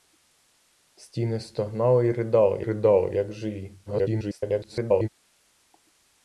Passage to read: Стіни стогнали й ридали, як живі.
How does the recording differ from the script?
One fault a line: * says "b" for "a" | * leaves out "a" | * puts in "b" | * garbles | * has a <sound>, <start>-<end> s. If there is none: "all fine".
* puts in "ридали"
* garbles